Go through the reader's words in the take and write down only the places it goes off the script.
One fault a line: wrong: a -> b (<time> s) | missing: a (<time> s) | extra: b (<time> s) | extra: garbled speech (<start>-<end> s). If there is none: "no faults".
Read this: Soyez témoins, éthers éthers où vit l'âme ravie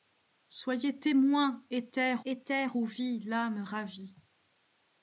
no faults